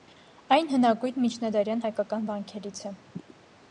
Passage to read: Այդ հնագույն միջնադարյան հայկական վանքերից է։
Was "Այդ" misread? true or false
true